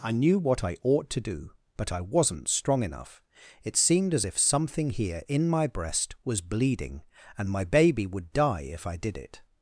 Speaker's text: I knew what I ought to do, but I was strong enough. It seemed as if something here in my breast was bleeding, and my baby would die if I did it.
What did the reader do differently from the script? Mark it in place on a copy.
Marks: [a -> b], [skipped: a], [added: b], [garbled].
I knew what I ought to do, but I [was -> wasn't] strong enough. It seemed as if something here in my breast was bleeding, and my baby would die if I did it.